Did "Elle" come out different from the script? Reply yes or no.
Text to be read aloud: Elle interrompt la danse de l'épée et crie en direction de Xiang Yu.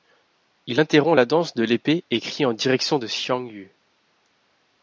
yes